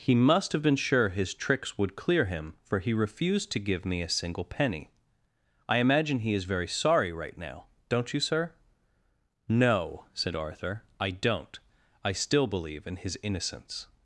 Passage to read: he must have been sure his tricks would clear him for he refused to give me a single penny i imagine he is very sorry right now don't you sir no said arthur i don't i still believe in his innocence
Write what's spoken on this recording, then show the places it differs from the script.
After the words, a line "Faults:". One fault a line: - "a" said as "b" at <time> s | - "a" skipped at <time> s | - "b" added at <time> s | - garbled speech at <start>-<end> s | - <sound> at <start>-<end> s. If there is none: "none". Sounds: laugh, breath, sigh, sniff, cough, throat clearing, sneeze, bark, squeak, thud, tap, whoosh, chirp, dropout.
he must have been sure his tricks would clear him for he refused to give me a single penny i imagine he is very sorry right now don't you sir no said arthur i don't i still believe in his innocence
Faults:
none